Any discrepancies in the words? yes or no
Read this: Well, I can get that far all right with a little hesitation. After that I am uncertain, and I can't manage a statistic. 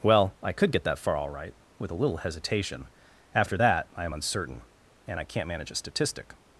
yes